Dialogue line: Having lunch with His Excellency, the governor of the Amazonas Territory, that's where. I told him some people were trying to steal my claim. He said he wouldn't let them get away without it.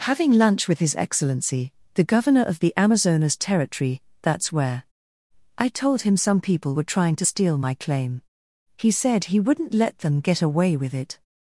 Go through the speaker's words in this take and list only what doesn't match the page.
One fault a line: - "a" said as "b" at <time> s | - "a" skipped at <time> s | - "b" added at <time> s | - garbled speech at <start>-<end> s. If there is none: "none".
- "without" said as "with" at 10.8 s